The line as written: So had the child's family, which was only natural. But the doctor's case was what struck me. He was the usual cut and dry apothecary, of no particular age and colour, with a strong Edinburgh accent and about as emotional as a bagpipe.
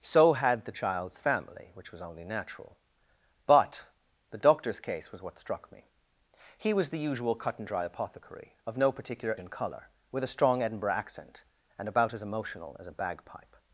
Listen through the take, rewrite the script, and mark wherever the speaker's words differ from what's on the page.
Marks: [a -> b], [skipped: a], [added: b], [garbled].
So had the child's family, which was only natural. But the doctor's case was what struck me. He was the usual cut and dry apothecary, of no particular [skipped: age] and colour, with a strong Edinburgh accent and about as emotional as a bagpipe.